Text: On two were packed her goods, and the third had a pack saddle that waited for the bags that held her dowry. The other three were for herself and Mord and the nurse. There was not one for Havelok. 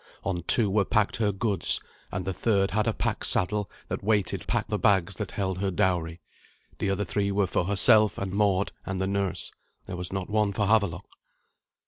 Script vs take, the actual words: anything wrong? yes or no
yes